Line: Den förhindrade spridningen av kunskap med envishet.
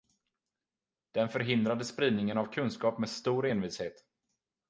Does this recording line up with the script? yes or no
no